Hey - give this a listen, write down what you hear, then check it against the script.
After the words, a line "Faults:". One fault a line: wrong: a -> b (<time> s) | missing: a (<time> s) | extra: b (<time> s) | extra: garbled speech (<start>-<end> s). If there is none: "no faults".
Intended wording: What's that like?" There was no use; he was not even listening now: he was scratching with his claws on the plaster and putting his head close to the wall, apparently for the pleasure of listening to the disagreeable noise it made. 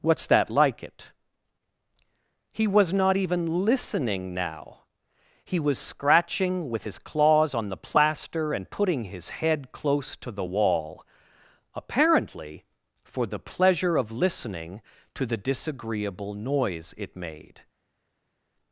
What's that like?" It; he was not even listening now: he was scratching with his claws on the plaster and putting his head close to the wall, apparently for the pleasure of listening to the disagreeable noise it made.
Faults:
wrong: There was no use -> It (0.8 s)